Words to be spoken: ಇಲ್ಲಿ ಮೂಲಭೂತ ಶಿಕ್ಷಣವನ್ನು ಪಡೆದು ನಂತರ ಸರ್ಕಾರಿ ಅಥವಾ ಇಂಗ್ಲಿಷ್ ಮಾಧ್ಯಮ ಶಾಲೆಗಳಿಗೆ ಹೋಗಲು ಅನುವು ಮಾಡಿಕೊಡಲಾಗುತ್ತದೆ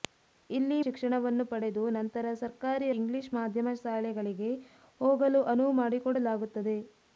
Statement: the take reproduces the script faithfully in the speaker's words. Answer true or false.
false